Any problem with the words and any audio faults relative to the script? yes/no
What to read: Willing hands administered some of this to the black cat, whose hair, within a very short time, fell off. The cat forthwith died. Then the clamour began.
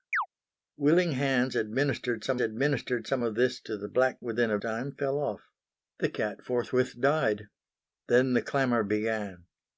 yes